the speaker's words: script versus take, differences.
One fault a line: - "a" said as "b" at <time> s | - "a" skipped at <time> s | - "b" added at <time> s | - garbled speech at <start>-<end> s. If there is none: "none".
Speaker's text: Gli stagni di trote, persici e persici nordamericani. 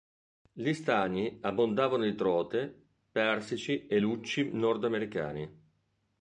- "abbondavano" added at 1.4 s
- "persici" said as "lucci" at 4.0 s